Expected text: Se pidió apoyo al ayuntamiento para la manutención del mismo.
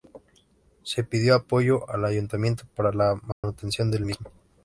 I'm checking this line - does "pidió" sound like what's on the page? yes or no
yes